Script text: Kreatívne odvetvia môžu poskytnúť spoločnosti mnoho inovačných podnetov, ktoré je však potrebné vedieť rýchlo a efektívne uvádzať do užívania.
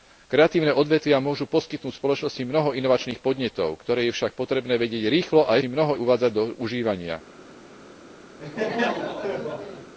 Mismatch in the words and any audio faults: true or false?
true